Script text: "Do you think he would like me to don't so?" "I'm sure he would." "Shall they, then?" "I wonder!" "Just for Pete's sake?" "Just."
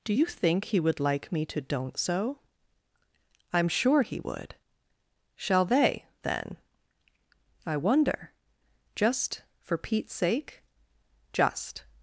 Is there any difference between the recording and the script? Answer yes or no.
no